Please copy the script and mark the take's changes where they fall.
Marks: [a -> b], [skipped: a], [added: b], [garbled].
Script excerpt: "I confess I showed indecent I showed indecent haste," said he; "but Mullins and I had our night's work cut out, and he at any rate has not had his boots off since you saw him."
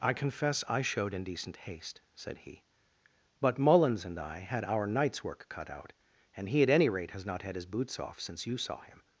"I confess I showed indecent [skipped: I showed indecent] haste," said he; "but Mullins and I had our night's work cut out, and he at any rate has not had his boots off since you saw him."